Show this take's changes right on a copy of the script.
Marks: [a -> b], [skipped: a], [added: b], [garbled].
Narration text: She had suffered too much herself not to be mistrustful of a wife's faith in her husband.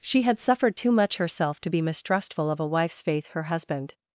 She had suffered too much herself [skipped: not] to be mistrustful of a wife's faith [skipped: in] her husband.